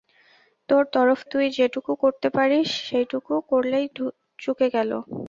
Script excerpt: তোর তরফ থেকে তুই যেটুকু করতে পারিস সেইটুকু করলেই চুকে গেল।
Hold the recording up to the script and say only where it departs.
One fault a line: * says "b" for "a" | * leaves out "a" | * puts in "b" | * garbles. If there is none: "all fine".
* leaves out "থেকে"